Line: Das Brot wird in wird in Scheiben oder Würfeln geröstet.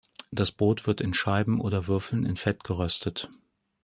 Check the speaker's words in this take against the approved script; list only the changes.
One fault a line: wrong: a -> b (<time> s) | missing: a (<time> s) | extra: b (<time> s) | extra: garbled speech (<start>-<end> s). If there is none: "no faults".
missing: wird in (1.1 s)
extra: in Fett (2.2 s)